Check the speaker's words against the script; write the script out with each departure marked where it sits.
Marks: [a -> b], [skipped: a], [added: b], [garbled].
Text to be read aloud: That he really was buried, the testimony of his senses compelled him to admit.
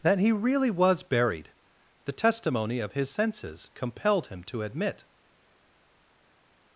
That he really was buried, the testimony of his senses compelled him to admit.